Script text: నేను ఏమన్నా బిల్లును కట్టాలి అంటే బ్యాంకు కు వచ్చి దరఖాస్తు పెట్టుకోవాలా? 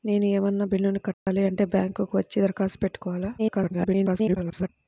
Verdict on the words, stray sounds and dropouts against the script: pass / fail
fail